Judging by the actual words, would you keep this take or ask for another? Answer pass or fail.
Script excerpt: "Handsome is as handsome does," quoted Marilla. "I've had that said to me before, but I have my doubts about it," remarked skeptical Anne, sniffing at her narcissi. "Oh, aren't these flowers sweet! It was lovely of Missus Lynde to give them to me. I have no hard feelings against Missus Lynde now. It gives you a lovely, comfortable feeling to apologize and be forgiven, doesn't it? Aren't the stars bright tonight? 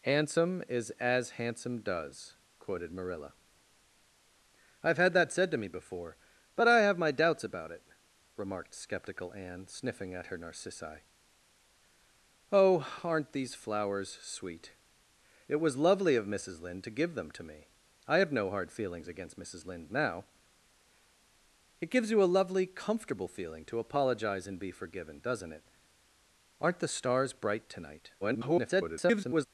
fail